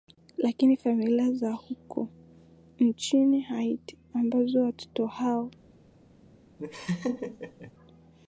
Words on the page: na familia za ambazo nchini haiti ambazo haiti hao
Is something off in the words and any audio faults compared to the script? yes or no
yes